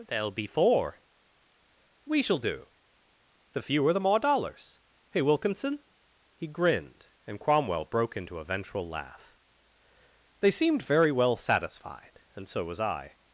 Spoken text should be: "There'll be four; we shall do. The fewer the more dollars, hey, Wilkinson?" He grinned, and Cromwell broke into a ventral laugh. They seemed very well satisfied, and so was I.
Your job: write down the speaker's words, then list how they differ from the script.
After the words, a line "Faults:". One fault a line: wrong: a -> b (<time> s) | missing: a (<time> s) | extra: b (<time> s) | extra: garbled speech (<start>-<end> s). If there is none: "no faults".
"There'll be four; we shall do. The fewer the more dollars, hey, Wilkinson?" He grinned, and Cromwell broke into a ventral laugh. They seemed very well satisfied, and so was I.
Faults:
no faults